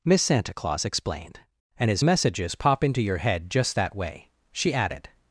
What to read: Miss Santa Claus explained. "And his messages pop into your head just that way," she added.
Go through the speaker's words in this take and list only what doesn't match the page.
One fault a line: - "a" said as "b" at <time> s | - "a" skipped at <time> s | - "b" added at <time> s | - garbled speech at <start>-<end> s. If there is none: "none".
none